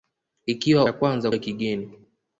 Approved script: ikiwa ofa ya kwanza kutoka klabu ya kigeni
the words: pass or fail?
fail